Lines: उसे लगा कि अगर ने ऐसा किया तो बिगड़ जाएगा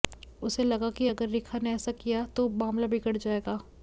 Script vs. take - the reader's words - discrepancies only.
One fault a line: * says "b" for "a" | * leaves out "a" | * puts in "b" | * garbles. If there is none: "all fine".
* puts in "रेखा"
* puts in "मामला"